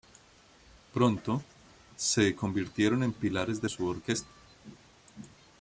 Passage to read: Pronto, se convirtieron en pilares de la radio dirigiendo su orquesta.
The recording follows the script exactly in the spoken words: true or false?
false